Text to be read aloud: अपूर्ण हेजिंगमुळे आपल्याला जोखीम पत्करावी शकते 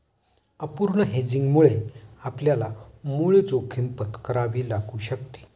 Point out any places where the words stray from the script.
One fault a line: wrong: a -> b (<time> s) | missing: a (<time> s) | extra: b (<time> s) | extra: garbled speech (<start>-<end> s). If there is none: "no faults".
extra: मूळ (3.0 s)
extra: लागू (4.7 s)